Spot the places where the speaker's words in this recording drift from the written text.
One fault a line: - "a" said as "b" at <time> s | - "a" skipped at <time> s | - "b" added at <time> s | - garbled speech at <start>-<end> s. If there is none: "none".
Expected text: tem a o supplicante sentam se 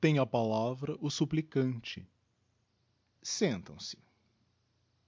- "palavra" added at 0.2 s